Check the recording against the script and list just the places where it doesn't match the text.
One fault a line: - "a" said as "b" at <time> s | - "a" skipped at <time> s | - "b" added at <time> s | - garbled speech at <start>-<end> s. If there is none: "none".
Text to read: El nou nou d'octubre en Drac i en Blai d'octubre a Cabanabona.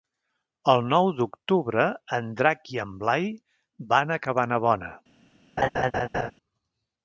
- "nou" skipped at 1.1 s
- "d'octubre" said as "van" at 3.9 s